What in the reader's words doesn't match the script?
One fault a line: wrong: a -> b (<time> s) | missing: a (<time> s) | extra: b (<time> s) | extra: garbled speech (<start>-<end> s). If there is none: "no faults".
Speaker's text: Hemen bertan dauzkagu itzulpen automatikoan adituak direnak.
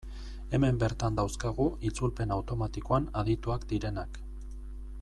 no faults